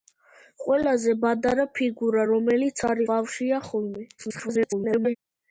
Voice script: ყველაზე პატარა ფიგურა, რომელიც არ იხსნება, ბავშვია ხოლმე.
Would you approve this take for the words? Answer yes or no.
no